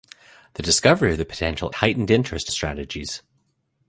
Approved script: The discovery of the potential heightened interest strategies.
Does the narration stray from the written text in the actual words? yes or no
no